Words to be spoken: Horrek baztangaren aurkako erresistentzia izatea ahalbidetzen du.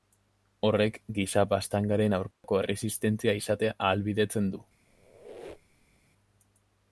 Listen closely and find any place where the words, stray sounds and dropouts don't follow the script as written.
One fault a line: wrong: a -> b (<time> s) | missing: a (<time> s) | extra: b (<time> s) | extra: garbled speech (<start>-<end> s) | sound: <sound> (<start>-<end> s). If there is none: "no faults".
extra: giza (1.2 s)
sound: dropout (2.3-2.4 s)
sound: squeak (4.9-6.0 s)